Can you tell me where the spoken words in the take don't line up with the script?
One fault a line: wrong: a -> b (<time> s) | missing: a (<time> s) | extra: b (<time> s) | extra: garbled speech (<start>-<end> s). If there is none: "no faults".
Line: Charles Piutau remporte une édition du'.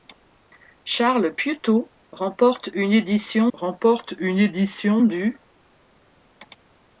extra: remporte une édition (3.5 s)